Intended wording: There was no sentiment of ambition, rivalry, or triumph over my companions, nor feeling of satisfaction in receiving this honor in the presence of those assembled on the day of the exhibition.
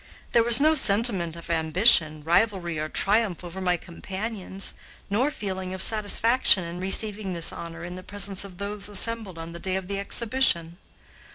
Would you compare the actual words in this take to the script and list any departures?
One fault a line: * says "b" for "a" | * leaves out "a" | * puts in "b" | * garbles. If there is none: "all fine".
all fine